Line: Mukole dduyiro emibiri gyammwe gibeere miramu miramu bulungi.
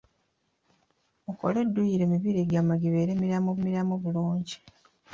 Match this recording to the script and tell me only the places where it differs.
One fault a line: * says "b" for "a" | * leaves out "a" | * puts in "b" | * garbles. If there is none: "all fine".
all fine